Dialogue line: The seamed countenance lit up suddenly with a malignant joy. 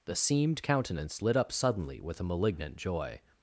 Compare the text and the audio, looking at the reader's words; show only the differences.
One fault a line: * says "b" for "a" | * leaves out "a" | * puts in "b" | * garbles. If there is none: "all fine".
all fine